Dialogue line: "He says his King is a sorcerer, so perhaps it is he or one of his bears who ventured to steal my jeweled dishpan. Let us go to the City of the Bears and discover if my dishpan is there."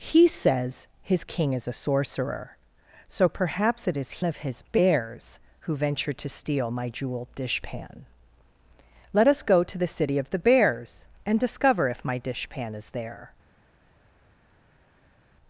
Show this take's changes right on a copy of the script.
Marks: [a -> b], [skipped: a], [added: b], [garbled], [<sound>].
"He says his King is a sorcerer, so perhaps it is [skipped: he or one] of his bears who ventured to steal my jeweled dishpan. Let us go to the City of the Bears and discover if my dishpan is there."